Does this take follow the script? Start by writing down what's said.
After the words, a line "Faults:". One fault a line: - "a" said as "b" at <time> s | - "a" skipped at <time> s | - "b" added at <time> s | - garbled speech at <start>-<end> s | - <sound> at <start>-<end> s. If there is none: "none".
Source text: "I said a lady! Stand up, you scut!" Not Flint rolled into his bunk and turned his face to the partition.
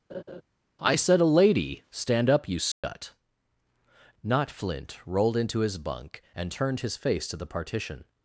"I said a lady! Stand up, you scut!" Not Flint rolled into his bunk and turned his face to the partition.
Faults:
- laugh at 0.1-0.4 s
- dropout at 2.7-2.8 s